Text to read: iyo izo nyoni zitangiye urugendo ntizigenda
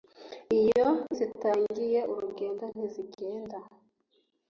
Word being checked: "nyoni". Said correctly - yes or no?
no